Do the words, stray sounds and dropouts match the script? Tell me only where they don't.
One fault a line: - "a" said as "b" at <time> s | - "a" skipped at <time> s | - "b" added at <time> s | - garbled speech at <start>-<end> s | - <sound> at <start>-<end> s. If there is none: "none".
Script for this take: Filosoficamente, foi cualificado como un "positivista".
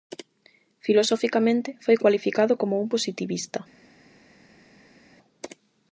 none